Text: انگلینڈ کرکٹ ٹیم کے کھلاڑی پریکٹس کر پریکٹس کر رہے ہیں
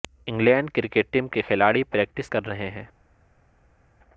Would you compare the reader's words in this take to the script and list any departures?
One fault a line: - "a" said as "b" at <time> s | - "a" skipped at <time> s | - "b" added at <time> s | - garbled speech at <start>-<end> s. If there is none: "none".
- "پریکٹس کر" skipped at 2.5 s